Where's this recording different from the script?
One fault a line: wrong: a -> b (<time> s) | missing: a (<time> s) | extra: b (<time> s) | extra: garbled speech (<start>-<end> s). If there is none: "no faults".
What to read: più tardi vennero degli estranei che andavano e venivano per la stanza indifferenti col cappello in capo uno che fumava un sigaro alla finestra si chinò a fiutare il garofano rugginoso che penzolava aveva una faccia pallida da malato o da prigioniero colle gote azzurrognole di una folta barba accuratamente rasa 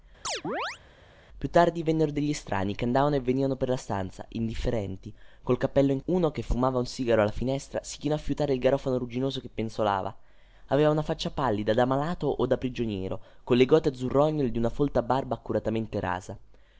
missing: capo (6.0 s)